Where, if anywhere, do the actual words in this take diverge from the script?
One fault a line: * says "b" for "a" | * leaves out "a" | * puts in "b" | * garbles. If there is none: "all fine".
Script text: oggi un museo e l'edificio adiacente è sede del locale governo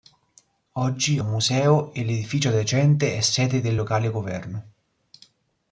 all fine